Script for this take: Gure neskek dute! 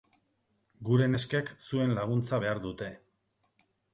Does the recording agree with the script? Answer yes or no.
no